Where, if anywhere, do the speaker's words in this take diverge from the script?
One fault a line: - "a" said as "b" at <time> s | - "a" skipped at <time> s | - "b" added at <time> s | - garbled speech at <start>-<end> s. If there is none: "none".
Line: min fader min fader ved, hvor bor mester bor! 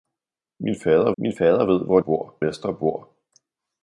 none